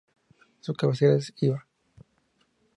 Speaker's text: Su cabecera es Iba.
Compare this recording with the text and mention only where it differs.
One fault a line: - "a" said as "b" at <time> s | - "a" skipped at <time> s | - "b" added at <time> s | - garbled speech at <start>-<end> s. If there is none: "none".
none